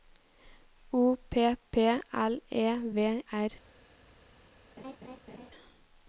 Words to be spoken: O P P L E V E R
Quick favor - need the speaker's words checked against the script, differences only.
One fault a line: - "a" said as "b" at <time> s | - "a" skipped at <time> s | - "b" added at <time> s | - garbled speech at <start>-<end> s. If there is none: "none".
- "E" skipped at 3.2 s